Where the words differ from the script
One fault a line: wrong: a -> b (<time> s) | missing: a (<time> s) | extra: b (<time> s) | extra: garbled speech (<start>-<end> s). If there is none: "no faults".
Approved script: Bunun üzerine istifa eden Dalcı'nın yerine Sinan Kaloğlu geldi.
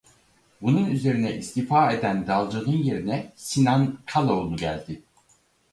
no faults